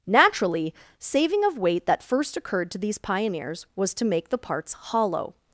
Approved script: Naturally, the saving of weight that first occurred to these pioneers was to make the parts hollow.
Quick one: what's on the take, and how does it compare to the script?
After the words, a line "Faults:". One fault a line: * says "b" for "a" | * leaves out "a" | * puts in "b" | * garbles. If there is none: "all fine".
Naturally, saving of weight that first occurred to these pioneers was to make the parts hollow.
Faults:
* leaves out "the"